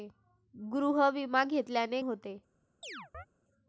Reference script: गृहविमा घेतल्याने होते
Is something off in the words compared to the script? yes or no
no